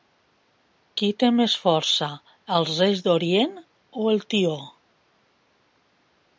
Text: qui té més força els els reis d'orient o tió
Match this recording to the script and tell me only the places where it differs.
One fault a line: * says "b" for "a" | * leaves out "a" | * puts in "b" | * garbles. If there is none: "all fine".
* leaves out "els"
* puts in "el"